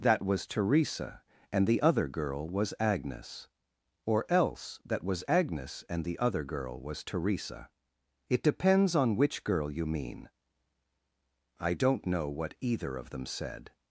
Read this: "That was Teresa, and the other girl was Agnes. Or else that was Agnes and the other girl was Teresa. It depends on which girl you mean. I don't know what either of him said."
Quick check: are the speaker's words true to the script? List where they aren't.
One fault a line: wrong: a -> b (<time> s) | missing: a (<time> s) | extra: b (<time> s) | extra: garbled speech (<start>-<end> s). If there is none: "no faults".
wrong: him -> them (13.1 s)